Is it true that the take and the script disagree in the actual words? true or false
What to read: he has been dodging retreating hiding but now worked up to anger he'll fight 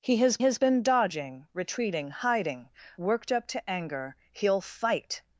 true